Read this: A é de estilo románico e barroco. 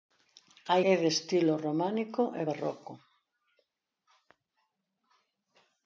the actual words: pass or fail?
pass